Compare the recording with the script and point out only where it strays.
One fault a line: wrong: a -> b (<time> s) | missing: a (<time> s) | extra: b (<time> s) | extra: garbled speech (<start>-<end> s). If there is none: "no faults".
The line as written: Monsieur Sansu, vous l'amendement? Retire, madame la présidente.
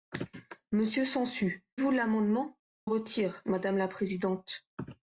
no faults